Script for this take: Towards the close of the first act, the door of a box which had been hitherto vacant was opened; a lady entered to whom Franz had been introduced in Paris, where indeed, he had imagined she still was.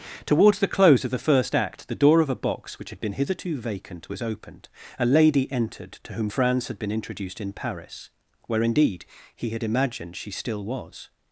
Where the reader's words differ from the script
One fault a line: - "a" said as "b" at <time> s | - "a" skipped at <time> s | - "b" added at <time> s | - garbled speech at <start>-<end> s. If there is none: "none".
none